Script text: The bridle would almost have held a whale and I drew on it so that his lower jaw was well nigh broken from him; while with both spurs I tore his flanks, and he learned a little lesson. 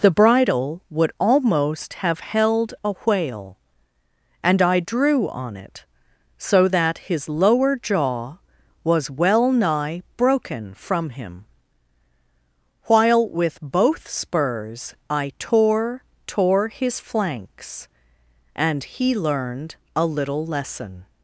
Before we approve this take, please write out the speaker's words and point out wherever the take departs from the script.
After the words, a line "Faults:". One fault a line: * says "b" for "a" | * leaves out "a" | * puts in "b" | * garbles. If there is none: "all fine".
The bridle would almost have held a whale and I drew on it so that his lower jaw was well nigh broken from him; while with both spurs I tore tore his flanks, and he learned a little lesson.
Faults:
* puts in "tore"